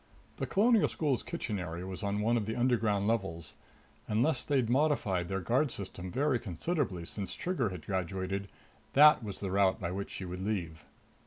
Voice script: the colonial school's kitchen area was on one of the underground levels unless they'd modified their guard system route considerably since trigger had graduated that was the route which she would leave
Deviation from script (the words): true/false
true